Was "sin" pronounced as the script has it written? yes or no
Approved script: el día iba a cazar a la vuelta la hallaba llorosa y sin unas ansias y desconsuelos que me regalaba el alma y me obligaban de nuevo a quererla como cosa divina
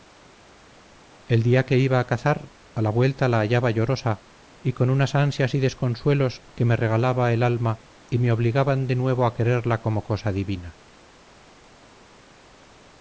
no